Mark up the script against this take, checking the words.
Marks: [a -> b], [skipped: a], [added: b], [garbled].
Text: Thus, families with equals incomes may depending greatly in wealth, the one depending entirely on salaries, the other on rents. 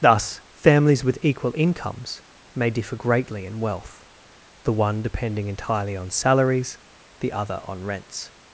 Thus, families with [equals -> equal] incomes may [depending -> differ] greatly in wealth, the one depending entirely on salaries, the other on rents.